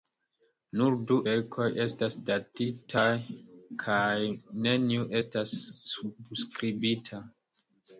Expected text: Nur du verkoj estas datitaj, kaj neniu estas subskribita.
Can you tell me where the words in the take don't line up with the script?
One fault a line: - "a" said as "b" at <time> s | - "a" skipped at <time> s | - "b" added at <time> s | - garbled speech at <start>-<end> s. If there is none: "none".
none